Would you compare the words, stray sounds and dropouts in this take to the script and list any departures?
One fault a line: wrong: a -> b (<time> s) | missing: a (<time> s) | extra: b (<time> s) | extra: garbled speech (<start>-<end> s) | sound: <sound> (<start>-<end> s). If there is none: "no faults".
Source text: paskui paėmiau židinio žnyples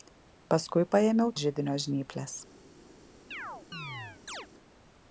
sound: chirp (3.3-4.5 s)